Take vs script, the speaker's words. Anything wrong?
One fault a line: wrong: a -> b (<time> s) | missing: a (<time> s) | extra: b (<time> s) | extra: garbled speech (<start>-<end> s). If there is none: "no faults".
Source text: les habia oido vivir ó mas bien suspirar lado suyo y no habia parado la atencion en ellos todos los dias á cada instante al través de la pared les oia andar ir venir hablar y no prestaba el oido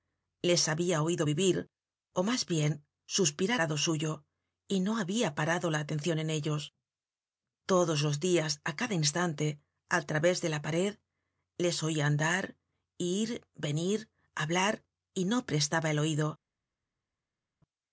no faults